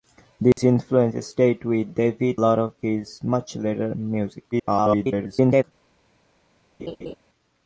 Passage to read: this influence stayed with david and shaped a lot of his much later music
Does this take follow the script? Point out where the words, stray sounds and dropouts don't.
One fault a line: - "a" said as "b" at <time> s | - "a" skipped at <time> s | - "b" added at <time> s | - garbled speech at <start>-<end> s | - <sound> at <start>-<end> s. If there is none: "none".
- dropout at 0.5-0.6 s
- "and shaped a" skipped at 2.4 s
- garbled speech at 4.5-5.6 s
- laugh at 6.8-7.2 s